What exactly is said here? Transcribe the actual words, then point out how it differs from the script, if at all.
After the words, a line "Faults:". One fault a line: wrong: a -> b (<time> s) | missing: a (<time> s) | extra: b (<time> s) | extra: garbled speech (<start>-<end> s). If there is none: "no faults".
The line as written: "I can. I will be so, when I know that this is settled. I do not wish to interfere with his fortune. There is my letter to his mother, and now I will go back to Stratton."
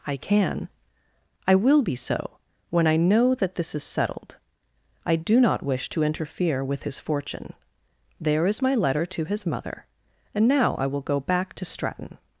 "I can. I will be so, when I know that this is settled. I do not wish to interfere with his fortune. There is my letter to his mother, and now I will go back to Stratton."
Faults:
no faults